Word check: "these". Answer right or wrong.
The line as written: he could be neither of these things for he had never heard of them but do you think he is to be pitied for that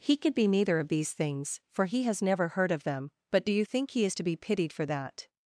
right